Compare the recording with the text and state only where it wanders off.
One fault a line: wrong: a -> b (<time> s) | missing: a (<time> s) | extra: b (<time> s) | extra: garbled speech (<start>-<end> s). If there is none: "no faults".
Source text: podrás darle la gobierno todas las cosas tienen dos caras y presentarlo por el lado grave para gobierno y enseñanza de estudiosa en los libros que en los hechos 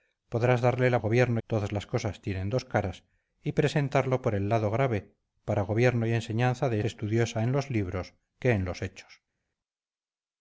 no faults